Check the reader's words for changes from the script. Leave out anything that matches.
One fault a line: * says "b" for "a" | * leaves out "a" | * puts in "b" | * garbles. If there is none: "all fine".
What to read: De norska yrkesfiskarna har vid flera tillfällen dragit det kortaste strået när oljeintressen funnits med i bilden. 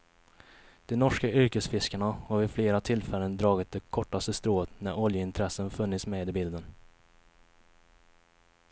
all fine